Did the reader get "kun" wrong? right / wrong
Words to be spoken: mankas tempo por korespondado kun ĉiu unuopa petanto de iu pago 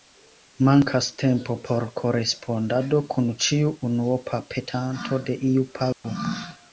right